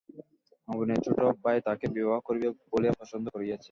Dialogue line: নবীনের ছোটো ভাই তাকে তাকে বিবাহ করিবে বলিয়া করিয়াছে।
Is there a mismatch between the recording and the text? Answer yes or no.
yes